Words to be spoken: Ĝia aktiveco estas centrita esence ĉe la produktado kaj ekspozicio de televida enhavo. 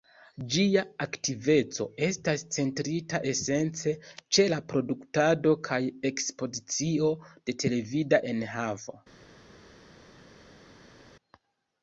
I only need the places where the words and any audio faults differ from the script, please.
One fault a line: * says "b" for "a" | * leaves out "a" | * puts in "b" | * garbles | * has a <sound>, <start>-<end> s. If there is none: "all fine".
all fine